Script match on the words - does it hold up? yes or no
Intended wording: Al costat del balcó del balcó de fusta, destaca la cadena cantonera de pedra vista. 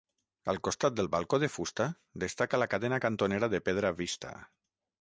no